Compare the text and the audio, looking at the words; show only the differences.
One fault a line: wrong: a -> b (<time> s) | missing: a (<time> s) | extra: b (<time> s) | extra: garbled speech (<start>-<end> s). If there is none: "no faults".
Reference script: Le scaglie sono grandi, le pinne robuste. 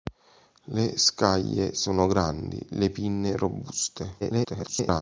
extra: garbled speech (4.2-5.0 s)